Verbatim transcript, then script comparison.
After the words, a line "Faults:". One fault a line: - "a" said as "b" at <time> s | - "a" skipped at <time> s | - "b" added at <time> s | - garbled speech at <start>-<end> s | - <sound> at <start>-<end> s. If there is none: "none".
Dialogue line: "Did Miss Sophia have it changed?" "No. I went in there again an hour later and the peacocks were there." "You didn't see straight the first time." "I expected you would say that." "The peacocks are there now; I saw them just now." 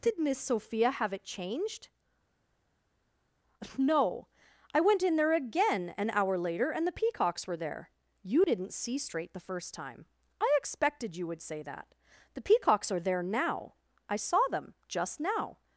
"Did Miss Sophia have it changed?" "No. I went in there again an hour later and the peacocks were there." "You didn't see straight the first time." "I expected you would say that." "The peacocks are there now; I saw them just now."
Faults:
none